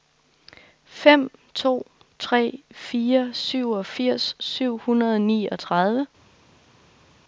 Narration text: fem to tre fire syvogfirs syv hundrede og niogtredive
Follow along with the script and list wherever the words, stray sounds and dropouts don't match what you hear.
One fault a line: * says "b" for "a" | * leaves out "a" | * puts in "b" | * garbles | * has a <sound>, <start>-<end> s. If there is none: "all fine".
all fine